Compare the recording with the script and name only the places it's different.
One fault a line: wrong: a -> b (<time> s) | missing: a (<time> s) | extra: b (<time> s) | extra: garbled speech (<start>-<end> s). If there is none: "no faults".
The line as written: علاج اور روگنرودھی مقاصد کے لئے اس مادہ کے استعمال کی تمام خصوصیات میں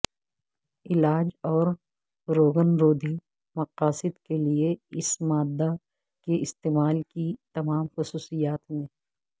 no faults